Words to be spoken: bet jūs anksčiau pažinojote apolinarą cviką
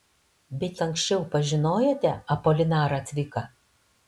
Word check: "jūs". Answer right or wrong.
wrong